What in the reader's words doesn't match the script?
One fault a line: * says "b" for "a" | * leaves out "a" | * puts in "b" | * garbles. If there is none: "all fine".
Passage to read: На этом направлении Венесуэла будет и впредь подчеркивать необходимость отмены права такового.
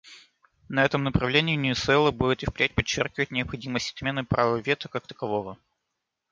* puts in "вето как"